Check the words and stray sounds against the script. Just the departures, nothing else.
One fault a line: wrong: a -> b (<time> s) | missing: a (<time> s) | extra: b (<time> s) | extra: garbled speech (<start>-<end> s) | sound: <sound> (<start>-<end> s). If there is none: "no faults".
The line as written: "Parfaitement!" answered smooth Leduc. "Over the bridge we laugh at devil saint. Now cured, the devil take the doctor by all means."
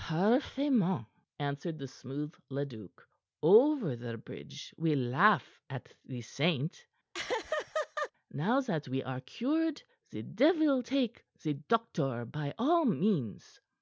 extra: the (1.8 s)
wrong: devil -> the (6.1 s)
sound: laugh (7.1-8.1 s)
extra: that we are (8.6 s)